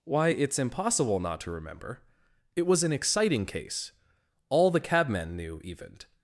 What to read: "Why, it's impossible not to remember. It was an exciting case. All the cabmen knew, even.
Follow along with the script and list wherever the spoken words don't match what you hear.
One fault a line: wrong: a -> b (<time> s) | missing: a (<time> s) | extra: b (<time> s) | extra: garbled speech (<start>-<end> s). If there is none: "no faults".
no faults